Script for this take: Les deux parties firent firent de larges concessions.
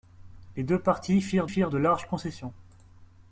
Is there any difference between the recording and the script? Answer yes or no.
no